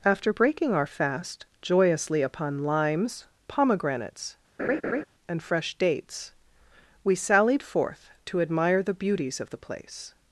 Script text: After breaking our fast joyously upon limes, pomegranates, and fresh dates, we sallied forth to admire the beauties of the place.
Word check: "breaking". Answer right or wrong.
right